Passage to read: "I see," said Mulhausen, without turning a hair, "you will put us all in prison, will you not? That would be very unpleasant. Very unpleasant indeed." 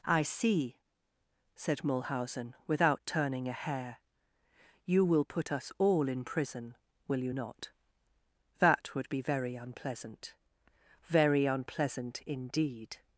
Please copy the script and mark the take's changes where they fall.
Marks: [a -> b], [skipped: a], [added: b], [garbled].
"I see," said Mulhausen, without turning a hair, "you will put us all in prison, will you not? That would be very unpleasant. Very unpleasant indeed."